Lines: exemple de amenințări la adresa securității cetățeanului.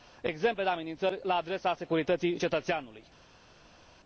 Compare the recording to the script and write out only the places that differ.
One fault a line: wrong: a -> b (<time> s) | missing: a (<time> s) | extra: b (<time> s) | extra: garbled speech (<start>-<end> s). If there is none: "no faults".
no faults